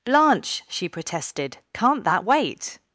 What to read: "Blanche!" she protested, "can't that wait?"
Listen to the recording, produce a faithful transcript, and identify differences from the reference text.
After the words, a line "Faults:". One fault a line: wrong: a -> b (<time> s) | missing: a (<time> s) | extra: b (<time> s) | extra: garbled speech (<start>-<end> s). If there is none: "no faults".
"Blanche!" she protested, "can't that wait?"
Faults:
no faults